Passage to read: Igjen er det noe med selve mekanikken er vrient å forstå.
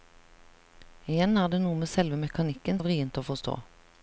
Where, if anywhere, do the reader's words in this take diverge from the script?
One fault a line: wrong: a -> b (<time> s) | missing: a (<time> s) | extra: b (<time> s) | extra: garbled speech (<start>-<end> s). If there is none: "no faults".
no faults